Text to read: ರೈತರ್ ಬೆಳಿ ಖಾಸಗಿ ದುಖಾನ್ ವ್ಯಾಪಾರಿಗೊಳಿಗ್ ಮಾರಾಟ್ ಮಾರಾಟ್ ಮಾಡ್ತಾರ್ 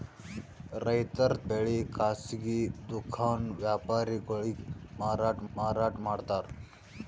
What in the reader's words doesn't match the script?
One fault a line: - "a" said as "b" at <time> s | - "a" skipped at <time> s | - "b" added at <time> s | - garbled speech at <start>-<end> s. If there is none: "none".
none